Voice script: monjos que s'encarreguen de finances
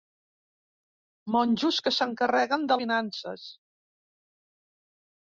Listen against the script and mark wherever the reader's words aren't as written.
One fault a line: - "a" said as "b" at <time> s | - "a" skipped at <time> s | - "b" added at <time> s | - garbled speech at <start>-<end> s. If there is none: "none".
none